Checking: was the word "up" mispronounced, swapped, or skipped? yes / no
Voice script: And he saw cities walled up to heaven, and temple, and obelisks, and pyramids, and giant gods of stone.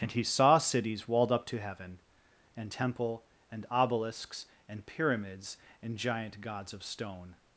no